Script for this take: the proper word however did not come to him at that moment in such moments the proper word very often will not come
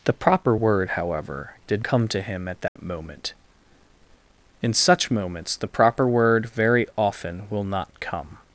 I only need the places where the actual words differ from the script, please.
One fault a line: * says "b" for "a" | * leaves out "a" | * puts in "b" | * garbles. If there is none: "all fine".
* leaves out "not"